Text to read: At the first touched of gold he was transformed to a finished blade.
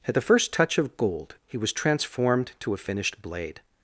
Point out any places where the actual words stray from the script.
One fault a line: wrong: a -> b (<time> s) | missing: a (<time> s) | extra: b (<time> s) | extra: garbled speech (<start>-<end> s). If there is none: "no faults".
wrong: touched -> touch (0.5 s)